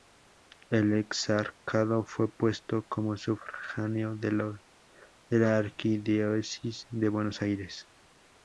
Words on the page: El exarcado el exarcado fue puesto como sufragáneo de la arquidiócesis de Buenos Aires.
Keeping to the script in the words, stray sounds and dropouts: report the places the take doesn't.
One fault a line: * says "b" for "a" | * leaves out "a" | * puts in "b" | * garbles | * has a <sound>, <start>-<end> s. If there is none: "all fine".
* leaves out "el exarcado"